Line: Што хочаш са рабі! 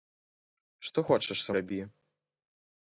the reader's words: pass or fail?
pass